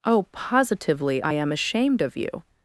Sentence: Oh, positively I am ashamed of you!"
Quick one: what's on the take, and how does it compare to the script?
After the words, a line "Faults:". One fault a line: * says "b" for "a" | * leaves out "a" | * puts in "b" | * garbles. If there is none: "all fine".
Oh, positively I am ashamed of you!"
Faults:
all fine